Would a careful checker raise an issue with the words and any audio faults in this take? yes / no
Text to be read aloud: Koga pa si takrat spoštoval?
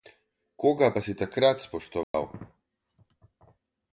yes